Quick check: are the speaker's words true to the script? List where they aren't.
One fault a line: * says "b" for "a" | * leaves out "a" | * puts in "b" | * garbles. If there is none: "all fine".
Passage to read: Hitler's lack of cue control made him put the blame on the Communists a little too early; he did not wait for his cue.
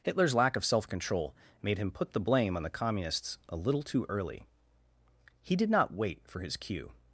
* says "self" for "cue"